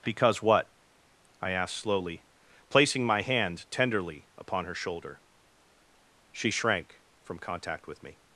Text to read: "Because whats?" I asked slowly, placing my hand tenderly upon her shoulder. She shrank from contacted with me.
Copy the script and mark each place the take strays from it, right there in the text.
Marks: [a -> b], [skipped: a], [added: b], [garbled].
"Because [whats?" -> what] I asked slowly, placing my hand tenderly upon her shoulder. She shrank from [contacted -> contact] with me.